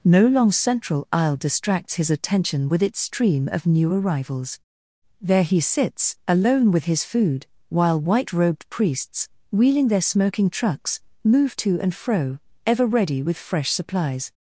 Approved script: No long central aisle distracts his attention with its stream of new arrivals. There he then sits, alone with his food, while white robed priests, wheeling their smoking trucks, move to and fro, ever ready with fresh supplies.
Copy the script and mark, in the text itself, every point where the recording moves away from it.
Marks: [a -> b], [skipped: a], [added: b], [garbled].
No long central aisle distracts his attention with its stream of new arrivals. There he [skipped: then] sits, alone with his food, while white robed priests, wheeling their smoking trucks, move to and fro, ever ready with fresh supplies.